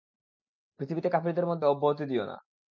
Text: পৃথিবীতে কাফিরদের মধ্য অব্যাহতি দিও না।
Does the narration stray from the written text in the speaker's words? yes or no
no